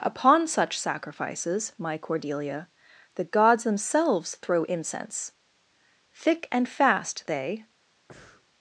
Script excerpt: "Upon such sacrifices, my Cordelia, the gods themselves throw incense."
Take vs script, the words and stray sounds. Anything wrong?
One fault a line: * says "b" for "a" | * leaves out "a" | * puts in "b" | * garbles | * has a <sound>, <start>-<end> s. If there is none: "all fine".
* puts in "Thick and fast they"
* has a breath, 8.1-8.5 s